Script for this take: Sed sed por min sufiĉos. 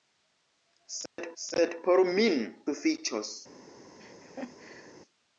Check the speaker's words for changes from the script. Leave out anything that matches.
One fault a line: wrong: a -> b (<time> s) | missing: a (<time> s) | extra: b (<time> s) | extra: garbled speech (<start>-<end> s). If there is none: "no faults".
no faults